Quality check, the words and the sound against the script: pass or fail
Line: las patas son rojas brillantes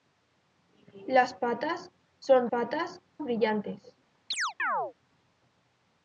fail